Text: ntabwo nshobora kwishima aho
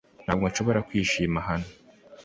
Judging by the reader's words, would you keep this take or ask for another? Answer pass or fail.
fail